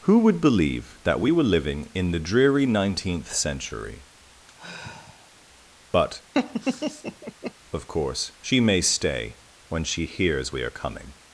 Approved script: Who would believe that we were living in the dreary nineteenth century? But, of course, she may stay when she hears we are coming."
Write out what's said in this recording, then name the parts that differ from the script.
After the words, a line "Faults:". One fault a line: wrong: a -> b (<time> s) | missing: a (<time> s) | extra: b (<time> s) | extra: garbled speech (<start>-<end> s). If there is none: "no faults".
Who would believe that we were living in the dreary nineteenth century? But, of course, she may stay when she hears we are coming."
Faults:
no faults